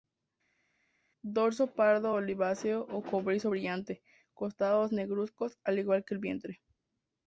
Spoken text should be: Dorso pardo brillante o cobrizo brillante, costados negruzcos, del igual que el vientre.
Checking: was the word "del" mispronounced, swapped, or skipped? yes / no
yes